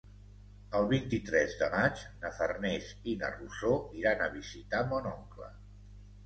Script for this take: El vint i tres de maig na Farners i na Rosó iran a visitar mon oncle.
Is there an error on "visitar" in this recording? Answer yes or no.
no